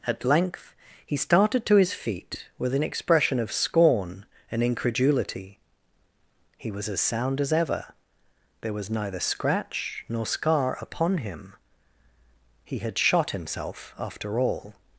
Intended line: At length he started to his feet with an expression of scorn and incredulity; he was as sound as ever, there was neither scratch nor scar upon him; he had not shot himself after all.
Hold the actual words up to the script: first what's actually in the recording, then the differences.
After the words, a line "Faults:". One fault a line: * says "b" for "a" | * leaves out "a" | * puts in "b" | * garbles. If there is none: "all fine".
At length he started to his feet with an expression of scorn and incredulity; he was as sound as ever, there was neither scratch nor scar upon him; he had shot himself after all.
Faults:
* leaves out "not"